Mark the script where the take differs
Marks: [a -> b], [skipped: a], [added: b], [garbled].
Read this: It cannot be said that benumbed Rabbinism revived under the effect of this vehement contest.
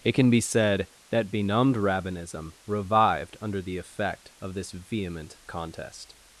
It [cannot -> can] be said that benumbed Rabbinism revived under the effect of this vehement contest.